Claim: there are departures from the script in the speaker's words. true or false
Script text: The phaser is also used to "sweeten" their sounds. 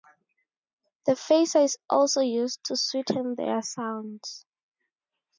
false